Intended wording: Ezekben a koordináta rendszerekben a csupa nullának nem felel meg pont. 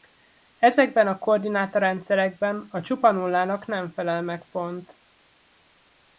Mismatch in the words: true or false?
false